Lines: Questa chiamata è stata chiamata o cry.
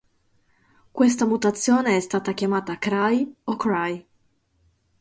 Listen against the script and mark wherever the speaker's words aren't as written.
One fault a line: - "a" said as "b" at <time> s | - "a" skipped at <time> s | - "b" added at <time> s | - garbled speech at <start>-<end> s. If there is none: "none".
- "chiamata" said as "mutazione" at 1.3 s
- "cry" added at 2.8 s